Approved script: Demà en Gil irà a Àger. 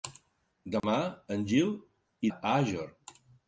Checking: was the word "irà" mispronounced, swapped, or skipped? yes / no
yes